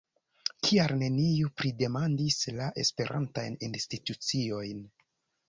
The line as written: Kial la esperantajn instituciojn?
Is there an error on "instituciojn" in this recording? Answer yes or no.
no